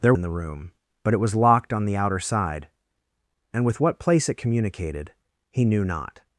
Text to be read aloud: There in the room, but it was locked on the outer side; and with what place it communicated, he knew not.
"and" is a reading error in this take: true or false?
false